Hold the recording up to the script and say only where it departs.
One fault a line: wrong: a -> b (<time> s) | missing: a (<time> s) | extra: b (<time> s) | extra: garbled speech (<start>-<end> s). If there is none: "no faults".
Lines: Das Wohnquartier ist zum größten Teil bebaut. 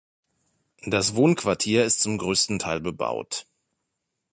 no faults